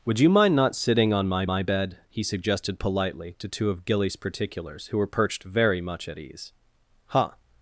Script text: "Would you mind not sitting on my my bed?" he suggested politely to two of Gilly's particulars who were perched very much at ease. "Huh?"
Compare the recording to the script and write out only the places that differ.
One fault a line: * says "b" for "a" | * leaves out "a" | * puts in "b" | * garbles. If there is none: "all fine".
all fine